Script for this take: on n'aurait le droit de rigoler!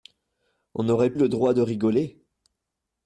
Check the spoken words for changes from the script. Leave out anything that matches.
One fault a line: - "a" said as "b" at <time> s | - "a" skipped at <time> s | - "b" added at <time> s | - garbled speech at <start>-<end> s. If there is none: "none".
none